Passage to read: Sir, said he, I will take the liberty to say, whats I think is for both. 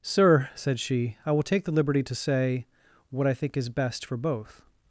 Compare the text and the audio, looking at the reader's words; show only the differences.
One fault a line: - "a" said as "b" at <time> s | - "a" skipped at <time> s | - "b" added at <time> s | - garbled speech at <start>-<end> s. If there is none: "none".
- "he" said as "she" at 0.8 s
- "whats" said as "what" at 3.1 s
- "best" added at 3.7 s